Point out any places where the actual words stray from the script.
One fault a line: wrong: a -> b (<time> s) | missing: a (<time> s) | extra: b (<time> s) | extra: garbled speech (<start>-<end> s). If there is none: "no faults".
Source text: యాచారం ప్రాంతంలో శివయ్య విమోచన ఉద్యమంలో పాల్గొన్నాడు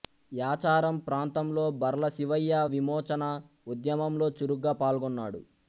extra: బర్ల (1.8 s)
extra: చురుగ్గా (4.4 s)